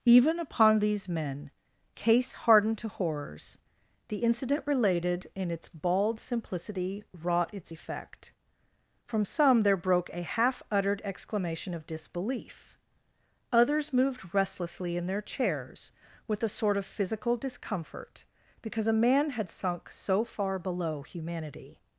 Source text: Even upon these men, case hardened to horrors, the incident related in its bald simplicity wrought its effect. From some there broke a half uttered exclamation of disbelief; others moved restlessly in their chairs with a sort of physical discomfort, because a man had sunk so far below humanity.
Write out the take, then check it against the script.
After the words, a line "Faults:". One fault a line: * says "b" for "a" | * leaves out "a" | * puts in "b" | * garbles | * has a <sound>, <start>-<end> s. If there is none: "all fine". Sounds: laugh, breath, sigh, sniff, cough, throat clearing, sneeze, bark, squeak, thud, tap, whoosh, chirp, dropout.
Even upon these men, case hardened to horrors, the incident related in its bald simplicity wrought its effect. From some there broke a half uttered exclamation of disbelief; others moved restlessly in their chairs with a sort of physical discomfort, because a man had sunk so far below humanity.
Faults:
all fine